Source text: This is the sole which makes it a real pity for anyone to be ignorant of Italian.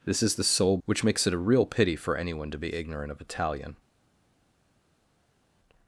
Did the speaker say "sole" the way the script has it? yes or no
yes